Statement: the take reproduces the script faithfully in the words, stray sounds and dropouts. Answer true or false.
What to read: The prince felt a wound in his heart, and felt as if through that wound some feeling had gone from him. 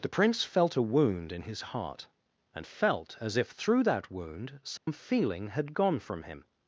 false